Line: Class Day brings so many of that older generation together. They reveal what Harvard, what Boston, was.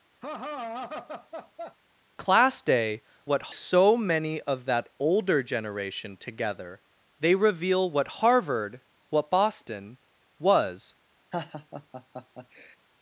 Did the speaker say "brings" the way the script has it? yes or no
no